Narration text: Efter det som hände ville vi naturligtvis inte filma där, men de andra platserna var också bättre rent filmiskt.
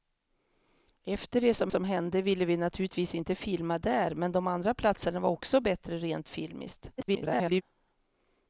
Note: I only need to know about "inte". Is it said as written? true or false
true